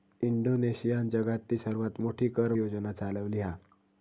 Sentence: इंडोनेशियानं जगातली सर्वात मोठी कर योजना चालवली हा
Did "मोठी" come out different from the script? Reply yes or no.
no